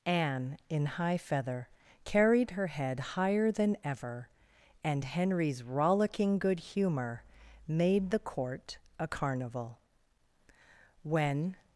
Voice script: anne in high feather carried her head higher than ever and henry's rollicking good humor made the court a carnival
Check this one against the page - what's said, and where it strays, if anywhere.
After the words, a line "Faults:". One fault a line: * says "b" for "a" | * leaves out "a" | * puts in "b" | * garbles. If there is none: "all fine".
anne in high feather carried her head higher than ever and henry's rollicking good humor made the court a carnival when
Faults:
* puts in "when"